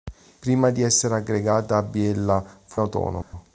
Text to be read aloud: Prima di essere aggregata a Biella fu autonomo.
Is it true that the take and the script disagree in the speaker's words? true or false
false